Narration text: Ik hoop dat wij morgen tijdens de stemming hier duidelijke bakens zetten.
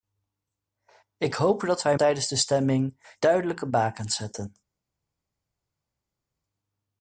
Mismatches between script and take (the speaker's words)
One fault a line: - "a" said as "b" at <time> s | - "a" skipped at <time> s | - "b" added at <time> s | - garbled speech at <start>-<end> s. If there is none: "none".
- "morgen" skipped at 2.0 s
- "hier" skipped at 3.2 s